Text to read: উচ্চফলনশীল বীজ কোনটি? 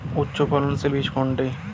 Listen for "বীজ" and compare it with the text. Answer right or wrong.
right